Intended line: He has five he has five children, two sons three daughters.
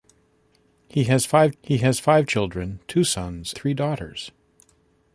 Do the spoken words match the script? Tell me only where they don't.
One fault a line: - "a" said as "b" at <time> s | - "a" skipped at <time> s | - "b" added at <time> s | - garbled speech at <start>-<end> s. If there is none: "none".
none